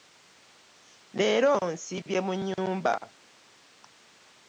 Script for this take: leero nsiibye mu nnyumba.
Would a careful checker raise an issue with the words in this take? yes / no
no